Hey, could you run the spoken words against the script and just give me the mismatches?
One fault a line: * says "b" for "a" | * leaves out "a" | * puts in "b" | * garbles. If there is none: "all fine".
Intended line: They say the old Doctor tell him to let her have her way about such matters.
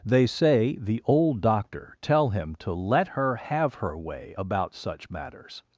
all fine